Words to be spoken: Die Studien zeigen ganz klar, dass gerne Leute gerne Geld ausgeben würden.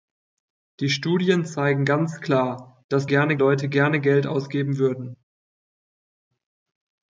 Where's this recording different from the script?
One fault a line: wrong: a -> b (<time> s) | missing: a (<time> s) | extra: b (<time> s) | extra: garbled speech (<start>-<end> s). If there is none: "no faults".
no faults